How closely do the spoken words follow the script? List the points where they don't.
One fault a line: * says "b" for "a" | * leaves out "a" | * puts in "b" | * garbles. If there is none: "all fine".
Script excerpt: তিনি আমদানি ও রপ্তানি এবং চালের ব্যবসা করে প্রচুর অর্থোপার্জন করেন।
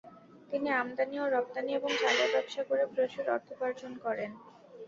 all fine